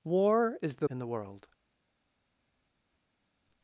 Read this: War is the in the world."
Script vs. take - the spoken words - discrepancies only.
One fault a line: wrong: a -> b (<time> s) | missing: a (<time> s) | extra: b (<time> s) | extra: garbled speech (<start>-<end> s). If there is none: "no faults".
no faults